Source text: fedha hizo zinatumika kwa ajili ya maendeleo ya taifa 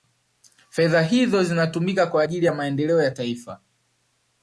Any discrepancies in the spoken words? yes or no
no